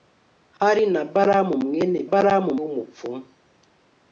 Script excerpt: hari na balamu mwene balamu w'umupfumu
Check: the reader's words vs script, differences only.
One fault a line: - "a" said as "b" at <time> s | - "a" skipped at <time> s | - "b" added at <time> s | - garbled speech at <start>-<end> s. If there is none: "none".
none